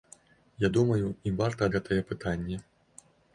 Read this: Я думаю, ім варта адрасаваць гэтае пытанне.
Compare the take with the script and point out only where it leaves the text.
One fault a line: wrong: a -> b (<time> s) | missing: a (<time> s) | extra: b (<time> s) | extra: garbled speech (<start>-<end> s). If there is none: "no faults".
missing: адрасаваць (1.7 s)